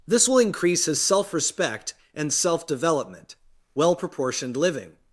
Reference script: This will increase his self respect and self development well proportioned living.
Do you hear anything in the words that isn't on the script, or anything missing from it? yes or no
no